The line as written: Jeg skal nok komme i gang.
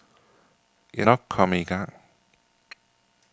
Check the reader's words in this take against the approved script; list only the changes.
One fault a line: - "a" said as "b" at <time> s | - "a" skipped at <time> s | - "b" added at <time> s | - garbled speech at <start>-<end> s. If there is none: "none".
- "skal" skipped at 1.1 s